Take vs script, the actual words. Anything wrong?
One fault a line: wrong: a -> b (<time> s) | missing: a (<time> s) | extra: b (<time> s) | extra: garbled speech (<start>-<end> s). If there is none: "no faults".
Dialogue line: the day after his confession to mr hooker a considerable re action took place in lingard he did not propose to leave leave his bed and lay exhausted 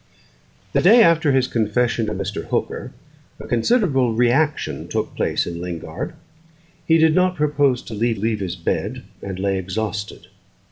no faults